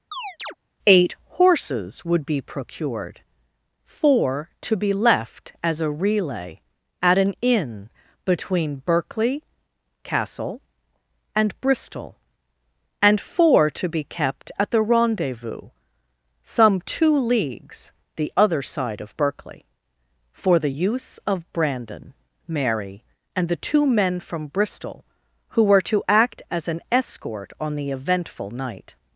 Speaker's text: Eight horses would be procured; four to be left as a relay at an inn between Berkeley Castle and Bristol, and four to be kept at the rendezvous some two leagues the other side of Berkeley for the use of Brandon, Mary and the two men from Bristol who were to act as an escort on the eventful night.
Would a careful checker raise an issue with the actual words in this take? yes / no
no